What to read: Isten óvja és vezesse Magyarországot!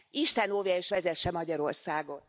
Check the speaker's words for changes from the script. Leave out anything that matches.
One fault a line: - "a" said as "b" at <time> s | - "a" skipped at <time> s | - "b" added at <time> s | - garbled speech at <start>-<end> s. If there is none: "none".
none